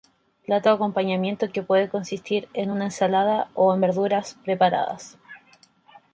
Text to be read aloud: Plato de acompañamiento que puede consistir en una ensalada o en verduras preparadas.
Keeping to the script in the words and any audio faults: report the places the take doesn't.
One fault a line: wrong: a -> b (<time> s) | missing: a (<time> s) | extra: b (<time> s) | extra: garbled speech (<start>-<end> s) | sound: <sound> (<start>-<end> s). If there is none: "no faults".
no faults